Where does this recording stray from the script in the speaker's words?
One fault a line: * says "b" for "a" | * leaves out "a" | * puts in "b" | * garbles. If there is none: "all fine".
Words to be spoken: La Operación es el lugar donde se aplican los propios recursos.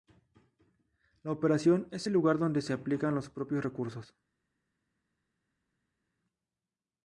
all fine